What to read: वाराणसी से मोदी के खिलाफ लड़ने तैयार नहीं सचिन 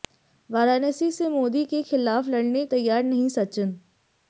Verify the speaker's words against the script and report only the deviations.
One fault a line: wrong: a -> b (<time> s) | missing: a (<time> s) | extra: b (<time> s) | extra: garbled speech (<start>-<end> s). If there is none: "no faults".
no faults